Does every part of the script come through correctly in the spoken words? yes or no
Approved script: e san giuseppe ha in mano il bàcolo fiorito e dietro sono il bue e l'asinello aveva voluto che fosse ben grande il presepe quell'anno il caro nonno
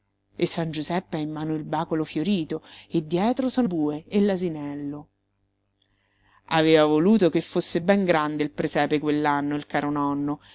no